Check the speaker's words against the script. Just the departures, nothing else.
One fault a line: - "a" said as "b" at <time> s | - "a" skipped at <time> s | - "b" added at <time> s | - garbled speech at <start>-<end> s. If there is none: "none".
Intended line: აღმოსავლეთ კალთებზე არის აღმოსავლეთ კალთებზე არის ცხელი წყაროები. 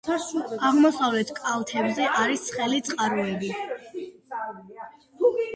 - "აღმოსავლეთ კალთებზე არის" skipped at 2.5 s